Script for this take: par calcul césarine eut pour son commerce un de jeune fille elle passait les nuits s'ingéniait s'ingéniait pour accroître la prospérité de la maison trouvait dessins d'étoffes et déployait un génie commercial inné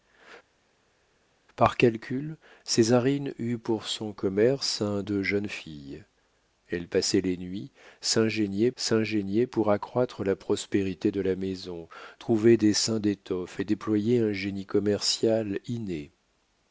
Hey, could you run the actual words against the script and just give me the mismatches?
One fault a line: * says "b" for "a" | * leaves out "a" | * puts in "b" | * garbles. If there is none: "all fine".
all fine